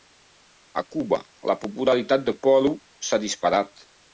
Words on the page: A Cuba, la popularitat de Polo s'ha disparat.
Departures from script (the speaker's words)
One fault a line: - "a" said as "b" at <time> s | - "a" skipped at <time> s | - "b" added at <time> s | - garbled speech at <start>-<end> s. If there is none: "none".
none